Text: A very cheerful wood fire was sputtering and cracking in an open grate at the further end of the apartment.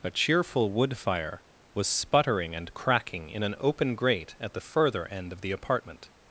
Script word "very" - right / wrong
wrong